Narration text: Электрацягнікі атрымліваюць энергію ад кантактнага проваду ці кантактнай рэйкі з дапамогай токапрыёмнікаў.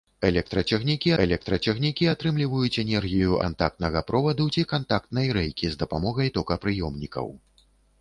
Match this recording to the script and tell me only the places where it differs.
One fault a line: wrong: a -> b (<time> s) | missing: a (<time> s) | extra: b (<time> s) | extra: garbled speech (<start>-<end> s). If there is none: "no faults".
extra: электрацягнікі (1.2 s)
missing: ад (3.4 s)